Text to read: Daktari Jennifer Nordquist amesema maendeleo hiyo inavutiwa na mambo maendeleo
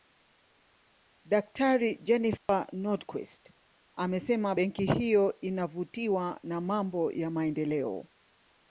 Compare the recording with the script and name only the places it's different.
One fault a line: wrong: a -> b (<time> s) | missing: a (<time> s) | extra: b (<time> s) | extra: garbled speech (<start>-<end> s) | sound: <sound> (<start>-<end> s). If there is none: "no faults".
sound: dropout (2.4-2.5 s)
wrong: maendeleo -> benki (4.5 s)
extra: ya (7.1 s)